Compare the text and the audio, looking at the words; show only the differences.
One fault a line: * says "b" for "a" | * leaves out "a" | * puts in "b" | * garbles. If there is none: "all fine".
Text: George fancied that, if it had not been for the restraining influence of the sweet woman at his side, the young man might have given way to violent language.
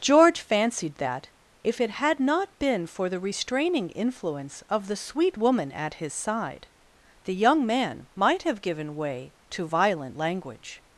all fine